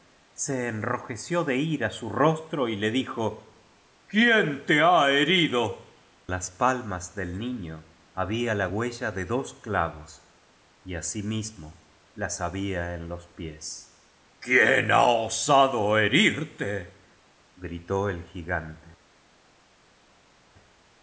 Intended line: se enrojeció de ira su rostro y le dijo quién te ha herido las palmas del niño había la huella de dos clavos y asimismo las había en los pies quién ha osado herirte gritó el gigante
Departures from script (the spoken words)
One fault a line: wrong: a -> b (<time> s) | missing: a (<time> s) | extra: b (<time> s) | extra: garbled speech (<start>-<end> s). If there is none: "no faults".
no faults